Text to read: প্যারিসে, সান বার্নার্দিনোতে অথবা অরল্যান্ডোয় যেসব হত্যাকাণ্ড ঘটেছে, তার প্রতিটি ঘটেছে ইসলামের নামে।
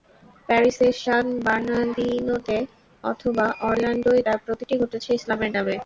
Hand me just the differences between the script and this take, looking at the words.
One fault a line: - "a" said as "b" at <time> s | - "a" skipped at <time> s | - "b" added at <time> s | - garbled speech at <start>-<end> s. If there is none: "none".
- "যেসব হত্যাকাণ্ড ঘটেছে" skipped at 4.2 s